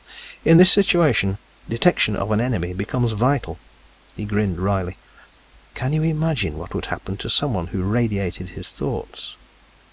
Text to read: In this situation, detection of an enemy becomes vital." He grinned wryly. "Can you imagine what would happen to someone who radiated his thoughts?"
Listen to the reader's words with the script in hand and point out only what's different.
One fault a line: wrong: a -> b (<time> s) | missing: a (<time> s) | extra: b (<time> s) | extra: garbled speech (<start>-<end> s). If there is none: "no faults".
no faults